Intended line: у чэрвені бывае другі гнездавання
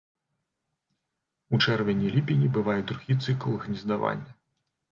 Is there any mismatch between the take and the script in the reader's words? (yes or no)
yes